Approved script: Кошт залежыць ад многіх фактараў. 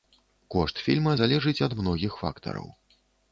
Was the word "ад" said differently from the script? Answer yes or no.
no